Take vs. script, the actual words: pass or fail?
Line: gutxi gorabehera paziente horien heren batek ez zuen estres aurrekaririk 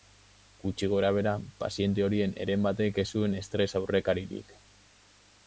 pass